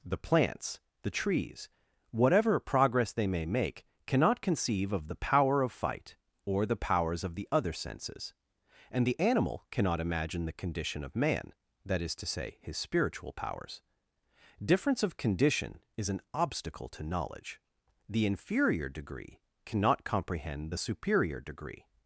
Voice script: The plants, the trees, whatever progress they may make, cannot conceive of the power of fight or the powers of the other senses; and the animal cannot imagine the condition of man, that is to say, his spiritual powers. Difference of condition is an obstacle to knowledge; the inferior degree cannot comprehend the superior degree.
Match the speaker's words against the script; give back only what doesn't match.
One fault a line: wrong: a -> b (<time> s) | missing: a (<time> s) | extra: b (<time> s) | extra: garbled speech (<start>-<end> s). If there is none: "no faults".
no faults